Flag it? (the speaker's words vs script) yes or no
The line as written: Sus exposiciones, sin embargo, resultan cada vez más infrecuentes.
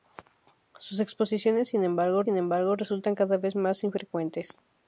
yes